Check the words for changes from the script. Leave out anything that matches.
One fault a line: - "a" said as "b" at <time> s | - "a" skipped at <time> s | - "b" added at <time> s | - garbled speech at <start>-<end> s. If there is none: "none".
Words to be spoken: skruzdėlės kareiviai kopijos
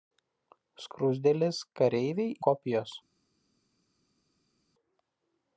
none